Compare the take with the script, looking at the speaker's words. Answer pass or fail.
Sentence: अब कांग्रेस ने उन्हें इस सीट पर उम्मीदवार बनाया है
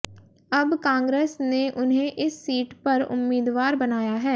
pass